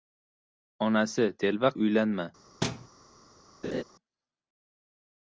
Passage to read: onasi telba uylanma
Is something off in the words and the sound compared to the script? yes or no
yes